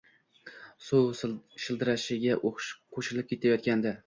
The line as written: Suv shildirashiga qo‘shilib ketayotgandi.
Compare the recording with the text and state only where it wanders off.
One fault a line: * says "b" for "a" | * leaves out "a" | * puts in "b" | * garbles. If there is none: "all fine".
all fine